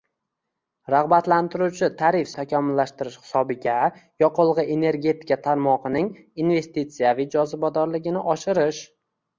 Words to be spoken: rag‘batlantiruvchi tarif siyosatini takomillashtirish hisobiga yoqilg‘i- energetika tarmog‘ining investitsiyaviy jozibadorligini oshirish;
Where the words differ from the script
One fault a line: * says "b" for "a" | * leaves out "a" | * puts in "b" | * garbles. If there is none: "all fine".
* leaves out "siyosatini"